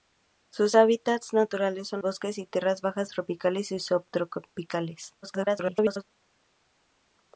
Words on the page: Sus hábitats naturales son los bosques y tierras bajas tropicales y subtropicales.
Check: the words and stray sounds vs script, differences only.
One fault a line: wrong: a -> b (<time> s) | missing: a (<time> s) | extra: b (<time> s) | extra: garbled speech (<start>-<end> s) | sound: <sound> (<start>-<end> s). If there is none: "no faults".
missing: los (2.0 s)
extra: garbled speech (5.2-6.0 s)